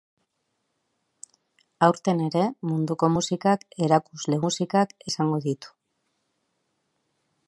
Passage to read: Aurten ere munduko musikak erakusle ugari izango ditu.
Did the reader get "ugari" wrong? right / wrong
wrong